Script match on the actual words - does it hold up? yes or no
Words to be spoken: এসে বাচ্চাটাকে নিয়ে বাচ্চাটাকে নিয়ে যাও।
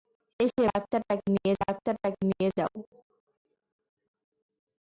yes